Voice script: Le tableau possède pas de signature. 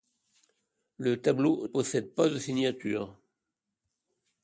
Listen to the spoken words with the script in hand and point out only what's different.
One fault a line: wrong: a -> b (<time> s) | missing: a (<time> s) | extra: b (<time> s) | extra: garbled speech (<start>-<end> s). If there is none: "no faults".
no faults